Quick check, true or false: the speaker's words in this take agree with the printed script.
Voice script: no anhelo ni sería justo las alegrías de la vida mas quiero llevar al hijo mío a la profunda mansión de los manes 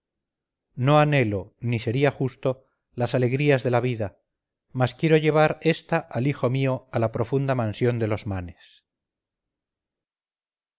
false